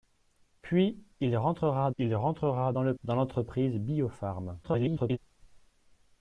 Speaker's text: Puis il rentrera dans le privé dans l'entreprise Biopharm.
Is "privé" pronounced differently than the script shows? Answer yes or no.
yes